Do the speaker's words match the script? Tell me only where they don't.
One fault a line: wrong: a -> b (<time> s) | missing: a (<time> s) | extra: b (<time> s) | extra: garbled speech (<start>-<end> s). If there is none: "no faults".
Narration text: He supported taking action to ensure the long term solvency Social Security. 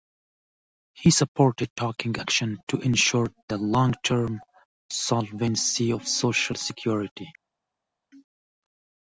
extra: of (5.9 s)